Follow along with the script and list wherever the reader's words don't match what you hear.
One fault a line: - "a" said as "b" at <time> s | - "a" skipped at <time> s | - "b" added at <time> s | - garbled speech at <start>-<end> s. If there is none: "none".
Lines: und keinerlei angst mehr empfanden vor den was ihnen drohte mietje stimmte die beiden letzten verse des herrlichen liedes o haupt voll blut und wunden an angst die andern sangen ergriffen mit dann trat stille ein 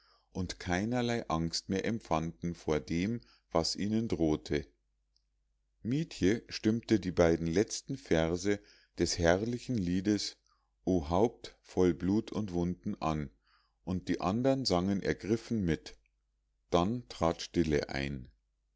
- "den" said as "dem" at 2.8 s
- "angst" said as "und" at 13.8 s